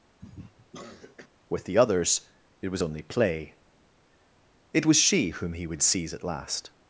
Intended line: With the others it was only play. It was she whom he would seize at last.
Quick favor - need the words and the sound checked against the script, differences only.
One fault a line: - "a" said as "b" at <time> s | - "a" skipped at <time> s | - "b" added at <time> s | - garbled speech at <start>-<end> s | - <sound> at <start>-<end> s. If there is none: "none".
- cough at 0.2-1.3 s